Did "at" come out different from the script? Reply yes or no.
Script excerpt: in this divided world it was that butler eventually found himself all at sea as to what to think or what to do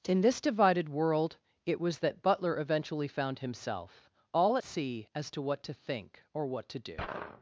yes